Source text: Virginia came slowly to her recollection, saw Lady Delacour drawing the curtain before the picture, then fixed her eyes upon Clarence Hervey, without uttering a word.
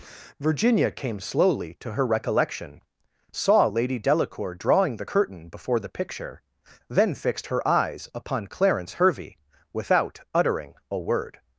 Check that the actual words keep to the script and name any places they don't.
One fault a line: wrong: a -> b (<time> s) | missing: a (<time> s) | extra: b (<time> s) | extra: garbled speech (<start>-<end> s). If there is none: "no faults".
no faults